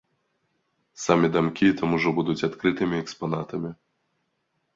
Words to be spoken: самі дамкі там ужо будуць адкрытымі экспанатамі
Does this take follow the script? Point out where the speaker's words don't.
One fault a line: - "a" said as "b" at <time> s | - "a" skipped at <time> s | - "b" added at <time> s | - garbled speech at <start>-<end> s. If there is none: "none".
none